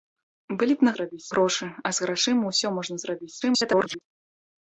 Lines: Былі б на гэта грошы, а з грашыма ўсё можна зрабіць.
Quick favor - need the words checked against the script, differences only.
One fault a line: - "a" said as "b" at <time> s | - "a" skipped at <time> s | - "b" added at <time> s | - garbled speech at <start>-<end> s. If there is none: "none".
- "гэта" said as "зрабіць" at 1.0 s
- garbled speech at 3.4-4.0 s